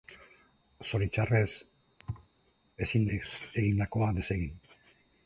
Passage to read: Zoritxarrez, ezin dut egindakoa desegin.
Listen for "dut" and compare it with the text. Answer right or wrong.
wrong